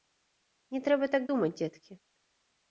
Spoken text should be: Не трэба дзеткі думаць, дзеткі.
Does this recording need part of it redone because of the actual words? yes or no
yes